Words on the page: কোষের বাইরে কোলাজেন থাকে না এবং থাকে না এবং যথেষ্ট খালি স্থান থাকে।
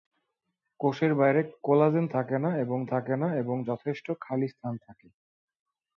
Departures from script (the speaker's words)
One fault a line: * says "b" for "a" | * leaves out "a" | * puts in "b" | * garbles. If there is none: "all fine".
all fine